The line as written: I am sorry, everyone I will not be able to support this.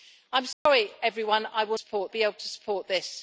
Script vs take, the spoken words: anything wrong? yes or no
yes